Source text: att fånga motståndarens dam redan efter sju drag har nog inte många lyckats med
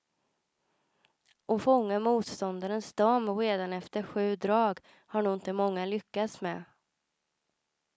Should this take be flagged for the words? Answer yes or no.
no